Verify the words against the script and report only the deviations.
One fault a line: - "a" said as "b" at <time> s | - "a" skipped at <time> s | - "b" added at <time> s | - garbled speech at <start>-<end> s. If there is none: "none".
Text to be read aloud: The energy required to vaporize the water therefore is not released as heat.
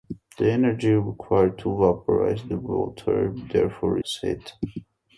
- "is not released" skipped at 4.0 s